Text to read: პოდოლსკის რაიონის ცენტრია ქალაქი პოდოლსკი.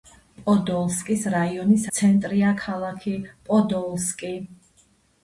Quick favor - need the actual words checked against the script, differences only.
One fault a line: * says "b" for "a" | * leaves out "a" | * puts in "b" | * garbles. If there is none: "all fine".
all fine